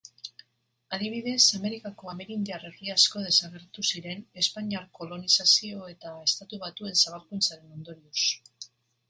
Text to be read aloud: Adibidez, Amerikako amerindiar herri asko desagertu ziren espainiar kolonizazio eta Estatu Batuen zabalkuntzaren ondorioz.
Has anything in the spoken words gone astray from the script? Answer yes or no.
no